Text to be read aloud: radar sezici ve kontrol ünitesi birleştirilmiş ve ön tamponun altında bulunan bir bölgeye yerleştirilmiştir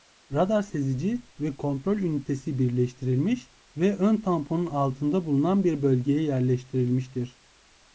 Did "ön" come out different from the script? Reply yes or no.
no